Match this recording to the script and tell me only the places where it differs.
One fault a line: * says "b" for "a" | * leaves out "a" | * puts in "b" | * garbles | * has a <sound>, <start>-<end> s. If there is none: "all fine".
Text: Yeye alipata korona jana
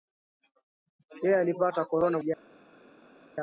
all fine